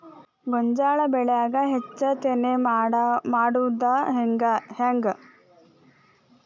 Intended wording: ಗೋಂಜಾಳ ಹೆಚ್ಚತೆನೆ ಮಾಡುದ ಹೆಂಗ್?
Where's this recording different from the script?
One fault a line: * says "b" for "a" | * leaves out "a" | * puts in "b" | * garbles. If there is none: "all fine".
* puts in "ಬೆಳ್ಯಾಗ"